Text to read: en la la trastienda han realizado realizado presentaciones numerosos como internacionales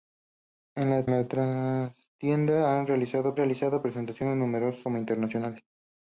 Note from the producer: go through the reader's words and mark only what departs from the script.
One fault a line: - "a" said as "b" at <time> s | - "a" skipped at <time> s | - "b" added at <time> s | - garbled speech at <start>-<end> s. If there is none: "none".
none